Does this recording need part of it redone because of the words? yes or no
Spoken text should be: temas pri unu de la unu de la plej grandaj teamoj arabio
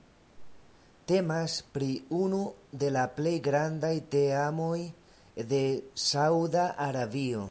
yes